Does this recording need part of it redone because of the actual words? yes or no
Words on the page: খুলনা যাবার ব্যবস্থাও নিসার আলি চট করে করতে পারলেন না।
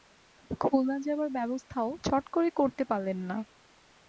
yes